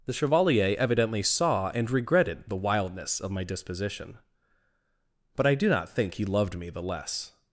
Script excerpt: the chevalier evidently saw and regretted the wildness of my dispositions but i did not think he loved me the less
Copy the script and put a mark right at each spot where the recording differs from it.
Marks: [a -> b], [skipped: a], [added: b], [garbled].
the chevalier evidently saw and regretted the wildness of my [dispositions -> disposition] but i [did -> do] not think he loved me the less